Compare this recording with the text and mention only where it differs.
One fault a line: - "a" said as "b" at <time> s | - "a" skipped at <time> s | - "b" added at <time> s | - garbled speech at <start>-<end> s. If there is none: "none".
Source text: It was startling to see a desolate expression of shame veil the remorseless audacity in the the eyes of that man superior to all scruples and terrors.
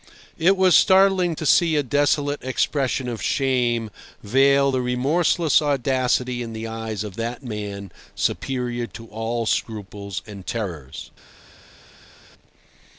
- "the" skipped at 6.7 s